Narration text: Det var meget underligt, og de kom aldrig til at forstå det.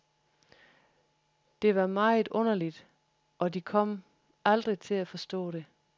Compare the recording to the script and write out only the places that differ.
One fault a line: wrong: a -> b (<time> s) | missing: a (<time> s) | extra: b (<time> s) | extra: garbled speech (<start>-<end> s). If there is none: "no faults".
no faults